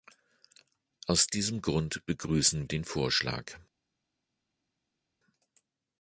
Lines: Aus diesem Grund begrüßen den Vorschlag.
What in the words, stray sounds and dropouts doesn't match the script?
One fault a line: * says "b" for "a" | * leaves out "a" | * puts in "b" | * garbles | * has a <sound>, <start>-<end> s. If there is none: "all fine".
all fine